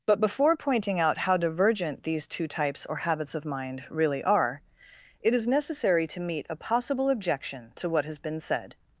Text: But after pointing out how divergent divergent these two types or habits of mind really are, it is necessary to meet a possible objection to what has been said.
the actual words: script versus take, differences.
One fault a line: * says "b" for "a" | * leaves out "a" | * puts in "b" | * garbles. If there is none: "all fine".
* says "before" for "after"
* leaves out "divergent"